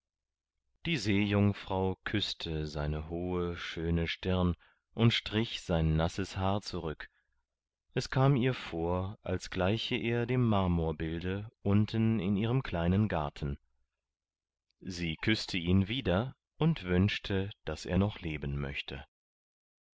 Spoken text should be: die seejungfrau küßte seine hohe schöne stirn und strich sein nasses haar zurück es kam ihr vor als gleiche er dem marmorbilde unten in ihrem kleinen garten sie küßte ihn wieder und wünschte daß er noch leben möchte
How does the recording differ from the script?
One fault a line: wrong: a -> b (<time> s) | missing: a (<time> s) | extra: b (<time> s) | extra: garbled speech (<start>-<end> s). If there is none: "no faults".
no faults